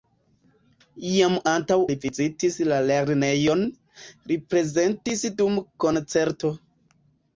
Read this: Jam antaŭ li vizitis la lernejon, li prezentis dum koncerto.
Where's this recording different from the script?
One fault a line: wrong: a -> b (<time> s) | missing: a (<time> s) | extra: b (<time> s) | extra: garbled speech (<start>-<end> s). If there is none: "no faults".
no faults